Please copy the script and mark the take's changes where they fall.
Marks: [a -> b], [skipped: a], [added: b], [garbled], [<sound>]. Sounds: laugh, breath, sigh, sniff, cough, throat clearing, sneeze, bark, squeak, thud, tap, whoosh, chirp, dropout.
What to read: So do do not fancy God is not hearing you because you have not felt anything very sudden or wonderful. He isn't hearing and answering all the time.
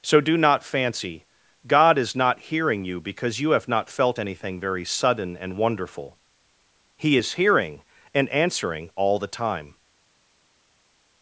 So do [skipped: do] not fancy God is not hearing you because you have not felt anything very sudden [or -> and] wonderful. He [isn't -> is] hearing and answering all the time.